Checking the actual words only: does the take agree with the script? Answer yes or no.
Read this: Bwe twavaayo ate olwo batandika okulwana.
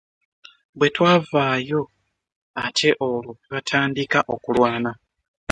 yes